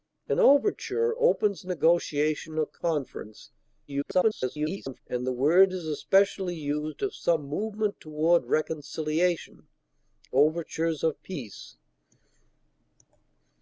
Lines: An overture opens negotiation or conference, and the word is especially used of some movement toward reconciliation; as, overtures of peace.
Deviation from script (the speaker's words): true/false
true